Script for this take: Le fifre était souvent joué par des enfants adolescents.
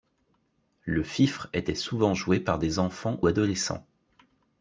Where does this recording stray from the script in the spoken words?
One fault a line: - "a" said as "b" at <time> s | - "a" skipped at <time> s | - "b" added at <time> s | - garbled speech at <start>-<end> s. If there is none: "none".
none